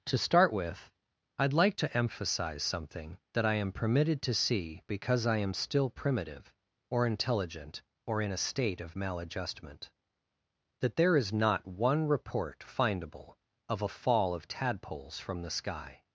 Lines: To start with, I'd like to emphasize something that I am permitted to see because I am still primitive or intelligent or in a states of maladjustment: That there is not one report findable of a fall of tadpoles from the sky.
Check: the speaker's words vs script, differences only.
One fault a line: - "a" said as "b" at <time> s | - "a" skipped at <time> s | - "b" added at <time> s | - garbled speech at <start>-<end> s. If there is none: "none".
- "states" said as "state" at 8.4 s